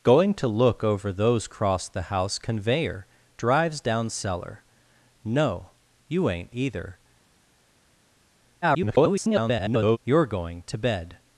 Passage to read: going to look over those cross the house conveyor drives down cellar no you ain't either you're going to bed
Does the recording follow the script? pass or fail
fail